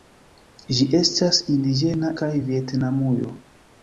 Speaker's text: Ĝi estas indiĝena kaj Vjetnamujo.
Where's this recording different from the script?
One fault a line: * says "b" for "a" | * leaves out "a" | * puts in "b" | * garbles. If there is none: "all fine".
all fine